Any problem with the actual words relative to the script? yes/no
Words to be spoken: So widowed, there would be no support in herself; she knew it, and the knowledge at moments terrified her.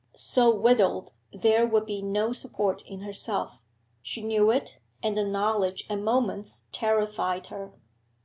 no